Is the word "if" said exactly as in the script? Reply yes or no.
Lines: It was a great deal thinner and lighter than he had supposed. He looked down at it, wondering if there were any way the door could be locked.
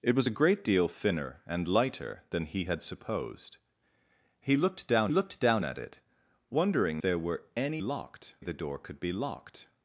no